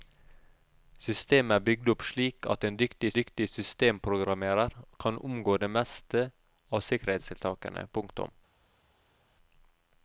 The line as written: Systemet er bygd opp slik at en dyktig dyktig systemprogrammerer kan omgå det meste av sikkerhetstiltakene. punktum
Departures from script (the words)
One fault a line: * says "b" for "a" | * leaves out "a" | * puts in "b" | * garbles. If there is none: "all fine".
all fine